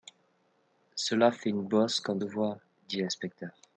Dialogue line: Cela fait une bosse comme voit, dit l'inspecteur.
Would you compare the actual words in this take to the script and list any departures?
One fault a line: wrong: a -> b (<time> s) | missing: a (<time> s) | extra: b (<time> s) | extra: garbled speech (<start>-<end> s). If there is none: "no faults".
no faults